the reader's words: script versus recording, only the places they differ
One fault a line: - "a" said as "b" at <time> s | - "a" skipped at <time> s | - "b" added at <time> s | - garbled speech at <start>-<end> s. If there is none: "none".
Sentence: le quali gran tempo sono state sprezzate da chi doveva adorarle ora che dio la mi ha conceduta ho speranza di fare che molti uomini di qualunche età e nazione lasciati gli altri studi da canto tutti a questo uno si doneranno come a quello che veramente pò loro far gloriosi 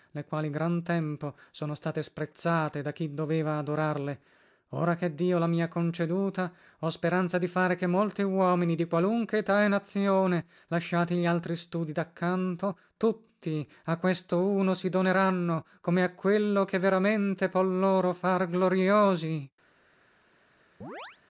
none